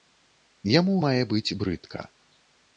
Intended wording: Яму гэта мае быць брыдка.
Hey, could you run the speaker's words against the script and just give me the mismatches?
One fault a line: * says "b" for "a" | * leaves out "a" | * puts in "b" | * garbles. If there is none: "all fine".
* leaves out "гэта"